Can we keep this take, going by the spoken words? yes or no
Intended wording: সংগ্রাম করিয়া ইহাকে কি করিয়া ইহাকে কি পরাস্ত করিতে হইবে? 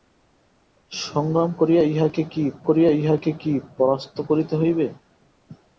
yes